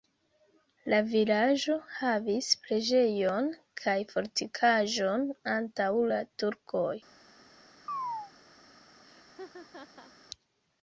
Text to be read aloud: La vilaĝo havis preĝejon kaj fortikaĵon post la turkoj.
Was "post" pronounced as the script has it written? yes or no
no